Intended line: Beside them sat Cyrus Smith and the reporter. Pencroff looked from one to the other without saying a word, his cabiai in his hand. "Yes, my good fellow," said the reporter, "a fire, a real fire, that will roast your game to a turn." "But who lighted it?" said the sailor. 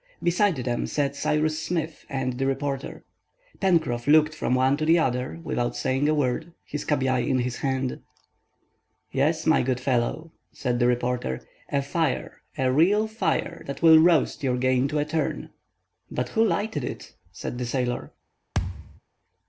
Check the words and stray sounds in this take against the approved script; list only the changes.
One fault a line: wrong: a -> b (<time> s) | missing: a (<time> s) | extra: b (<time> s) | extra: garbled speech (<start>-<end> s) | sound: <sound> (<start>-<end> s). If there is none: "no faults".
sound: thud (18.5-19.0 s)